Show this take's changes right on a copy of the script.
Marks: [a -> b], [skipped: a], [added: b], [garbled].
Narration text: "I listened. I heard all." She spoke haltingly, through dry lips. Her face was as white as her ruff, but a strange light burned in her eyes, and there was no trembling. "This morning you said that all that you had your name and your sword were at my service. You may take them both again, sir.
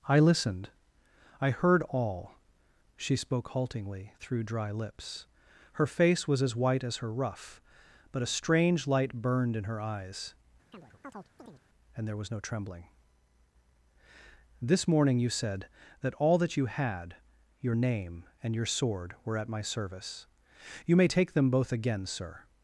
"I listened. I heard all." She spoke haltingly, through dry lips. Her face was as white as her ruff, but a strange light burned in her eyes, and there was no trembling. "This morning you said that all that you had your name and your sword were at my service. You may take them both again, sir.